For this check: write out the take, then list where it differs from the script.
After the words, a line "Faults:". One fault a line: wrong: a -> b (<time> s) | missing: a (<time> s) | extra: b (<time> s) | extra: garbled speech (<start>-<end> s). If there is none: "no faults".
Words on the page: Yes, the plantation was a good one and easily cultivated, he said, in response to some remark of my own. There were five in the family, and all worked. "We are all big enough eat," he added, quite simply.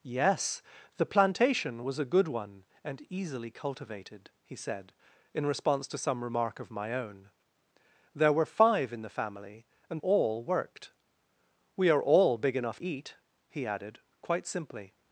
Yes, the plantation was a good one and easily cultivated, he said, in response to some remark of my own. There were five in the family, and all worked. "We are all big enough eat," he added, quite simply.
Faults:
no faults